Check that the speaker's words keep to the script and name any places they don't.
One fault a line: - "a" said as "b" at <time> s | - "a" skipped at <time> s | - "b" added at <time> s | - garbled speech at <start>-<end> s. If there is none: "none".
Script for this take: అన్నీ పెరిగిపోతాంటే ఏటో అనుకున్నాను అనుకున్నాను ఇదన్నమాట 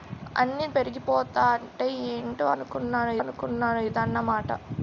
none